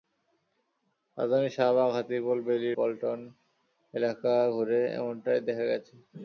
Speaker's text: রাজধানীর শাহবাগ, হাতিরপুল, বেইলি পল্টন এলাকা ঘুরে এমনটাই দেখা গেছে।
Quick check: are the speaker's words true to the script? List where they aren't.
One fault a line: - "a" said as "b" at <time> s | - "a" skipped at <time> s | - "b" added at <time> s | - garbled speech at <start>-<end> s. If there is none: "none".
none